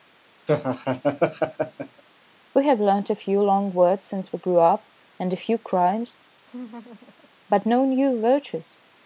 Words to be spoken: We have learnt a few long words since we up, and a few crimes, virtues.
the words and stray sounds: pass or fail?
fail